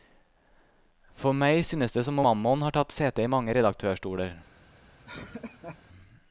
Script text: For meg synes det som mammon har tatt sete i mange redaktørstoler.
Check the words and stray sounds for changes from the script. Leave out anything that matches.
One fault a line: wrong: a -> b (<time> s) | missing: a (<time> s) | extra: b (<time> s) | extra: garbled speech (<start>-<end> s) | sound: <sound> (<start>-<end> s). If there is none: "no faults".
sound: laugh (5.0-5.8 s)